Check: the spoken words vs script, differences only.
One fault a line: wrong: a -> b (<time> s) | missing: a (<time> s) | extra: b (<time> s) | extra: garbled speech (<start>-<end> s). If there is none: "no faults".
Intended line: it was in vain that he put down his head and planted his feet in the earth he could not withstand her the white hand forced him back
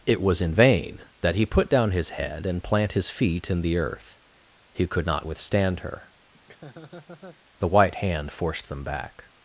wrong: planted -> plant (2.6 s)
wrong: him -> them (8.7 s)